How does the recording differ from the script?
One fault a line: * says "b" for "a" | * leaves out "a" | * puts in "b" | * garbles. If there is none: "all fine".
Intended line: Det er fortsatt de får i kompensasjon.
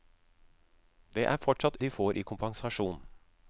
all fine